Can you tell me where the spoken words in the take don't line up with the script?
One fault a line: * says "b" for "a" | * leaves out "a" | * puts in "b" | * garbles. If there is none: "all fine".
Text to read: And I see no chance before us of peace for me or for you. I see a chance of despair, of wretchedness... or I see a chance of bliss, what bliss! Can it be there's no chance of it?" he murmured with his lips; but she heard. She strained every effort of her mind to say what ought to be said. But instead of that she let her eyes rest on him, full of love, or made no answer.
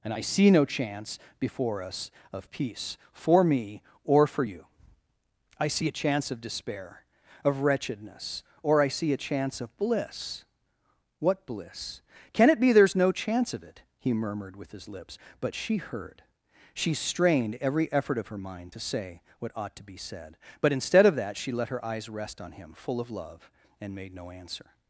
* says "and" for "or"